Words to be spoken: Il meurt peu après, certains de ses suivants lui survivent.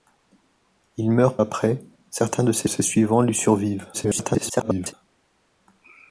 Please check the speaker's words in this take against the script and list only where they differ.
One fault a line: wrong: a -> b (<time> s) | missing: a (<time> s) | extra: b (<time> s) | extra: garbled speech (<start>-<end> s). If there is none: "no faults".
missing: peu (1.4 s)
extra: ses (2.7 s)
extra: garbled speech (3.9-4.9 s)